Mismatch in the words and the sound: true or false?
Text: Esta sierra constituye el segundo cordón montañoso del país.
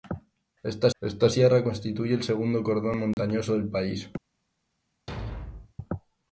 true